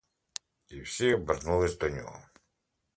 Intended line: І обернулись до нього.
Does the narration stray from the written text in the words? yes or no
yes